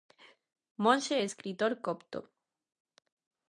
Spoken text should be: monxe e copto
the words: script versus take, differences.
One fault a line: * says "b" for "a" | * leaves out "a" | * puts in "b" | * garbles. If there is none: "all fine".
* puts in "escritor"